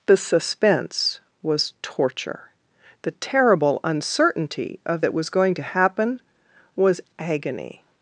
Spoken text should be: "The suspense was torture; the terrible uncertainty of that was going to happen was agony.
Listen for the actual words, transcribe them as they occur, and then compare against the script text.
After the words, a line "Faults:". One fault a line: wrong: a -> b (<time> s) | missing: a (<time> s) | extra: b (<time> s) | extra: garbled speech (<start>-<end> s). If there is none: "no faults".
"The suspense was torture; the terrible uncertainty of that was going to happen was agony.
Faults:
no faults